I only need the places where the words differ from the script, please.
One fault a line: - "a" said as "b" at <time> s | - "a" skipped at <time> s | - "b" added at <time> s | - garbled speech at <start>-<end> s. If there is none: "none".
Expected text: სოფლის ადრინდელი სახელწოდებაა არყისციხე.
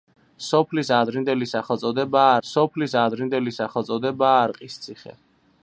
- "სოფლის ადრინდელი სახელწოდებაა" added at 2.5 s